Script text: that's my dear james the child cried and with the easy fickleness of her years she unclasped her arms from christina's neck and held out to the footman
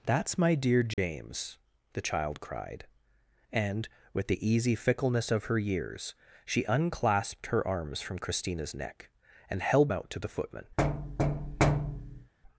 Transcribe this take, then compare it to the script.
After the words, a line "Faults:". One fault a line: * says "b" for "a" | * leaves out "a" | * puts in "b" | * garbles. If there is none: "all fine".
that's my dear james the child cried and with the easy fickleness of her years she unclasped her arms from christina's neck and held out to the footman
Faults:
all fine